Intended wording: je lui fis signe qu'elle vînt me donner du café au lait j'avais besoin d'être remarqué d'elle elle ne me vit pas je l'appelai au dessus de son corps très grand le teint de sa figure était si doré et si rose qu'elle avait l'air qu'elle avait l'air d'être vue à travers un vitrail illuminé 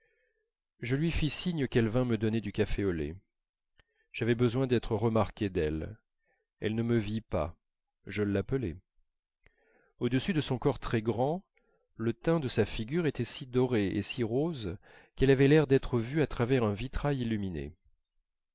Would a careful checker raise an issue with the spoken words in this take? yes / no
yes